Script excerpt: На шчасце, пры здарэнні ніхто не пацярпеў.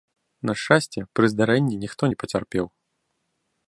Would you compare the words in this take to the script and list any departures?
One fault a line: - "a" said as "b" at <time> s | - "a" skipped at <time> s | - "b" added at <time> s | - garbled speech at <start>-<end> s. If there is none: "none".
none